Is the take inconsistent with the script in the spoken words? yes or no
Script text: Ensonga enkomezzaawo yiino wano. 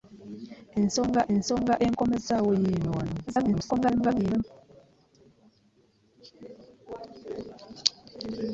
yes